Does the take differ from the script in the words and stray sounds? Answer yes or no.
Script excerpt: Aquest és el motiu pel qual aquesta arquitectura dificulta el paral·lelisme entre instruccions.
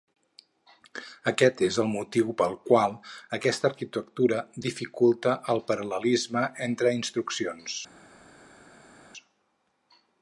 no